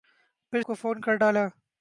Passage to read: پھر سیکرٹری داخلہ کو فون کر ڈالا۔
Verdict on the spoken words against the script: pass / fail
fail